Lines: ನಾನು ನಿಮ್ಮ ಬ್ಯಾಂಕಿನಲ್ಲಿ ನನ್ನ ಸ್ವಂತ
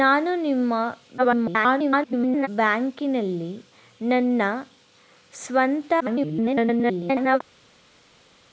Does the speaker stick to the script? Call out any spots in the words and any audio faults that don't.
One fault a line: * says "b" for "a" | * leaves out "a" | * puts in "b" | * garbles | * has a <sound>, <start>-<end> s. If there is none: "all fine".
* garbles
* garbles